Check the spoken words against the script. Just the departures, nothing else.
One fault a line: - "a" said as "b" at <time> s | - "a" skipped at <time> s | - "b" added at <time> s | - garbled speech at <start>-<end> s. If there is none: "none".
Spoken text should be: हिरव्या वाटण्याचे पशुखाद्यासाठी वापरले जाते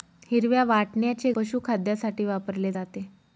none